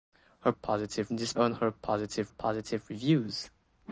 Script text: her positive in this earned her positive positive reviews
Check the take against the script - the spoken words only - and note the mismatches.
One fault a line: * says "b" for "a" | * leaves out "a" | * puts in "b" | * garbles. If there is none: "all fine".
all fine